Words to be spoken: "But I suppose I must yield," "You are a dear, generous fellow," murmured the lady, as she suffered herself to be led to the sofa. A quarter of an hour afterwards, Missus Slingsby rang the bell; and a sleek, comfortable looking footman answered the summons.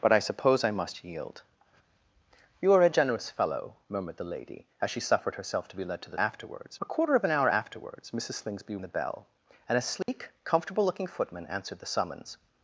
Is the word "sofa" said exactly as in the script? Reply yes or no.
no